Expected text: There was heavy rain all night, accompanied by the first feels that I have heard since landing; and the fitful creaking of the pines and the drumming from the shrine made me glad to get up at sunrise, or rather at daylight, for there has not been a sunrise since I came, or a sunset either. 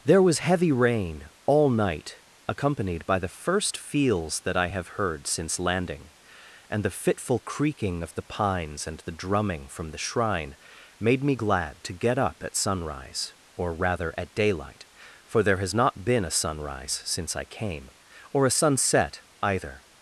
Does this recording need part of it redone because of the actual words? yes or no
no